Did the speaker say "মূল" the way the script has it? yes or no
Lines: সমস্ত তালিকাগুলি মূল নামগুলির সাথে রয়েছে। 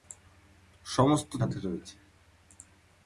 no